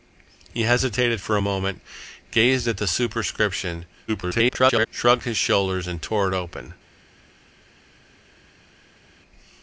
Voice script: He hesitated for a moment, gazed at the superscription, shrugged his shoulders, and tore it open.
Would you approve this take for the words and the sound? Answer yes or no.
no